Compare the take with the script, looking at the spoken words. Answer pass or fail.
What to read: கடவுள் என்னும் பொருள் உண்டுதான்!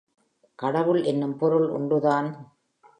pass